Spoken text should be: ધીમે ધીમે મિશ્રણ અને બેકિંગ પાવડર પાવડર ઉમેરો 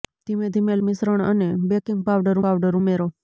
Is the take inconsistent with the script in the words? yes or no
no